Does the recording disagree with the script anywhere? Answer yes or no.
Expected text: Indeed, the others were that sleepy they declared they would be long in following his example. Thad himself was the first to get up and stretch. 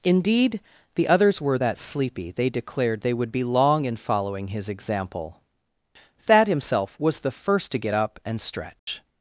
no